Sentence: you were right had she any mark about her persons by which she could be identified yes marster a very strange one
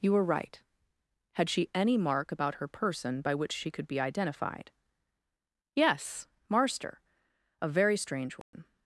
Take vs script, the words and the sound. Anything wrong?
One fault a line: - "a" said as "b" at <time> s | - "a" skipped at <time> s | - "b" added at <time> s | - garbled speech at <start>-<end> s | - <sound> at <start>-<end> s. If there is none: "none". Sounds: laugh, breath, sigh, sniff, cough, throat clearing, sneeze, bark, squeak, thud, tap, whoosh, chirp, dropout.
- "persons" said as "person" at 2.7 s
- dropout at 8.4-8.5 s